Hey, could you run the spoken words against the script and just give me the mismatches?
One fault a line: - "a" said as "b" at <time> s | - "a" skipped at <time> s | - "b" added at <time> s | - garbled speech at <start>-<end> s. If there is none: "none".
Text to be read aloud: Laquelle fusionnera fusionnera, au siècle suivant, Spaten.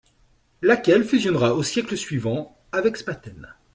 - "fusionnera" skipped at 1.5 s
- "avec" added at 2.7 s